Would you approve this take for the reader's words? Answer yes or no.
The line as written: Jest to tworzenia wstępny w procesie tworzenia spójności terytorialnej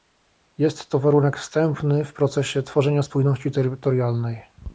no